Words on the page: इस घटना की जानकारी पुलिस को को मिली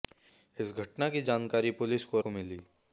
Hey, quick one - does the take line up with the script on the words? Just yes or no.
yes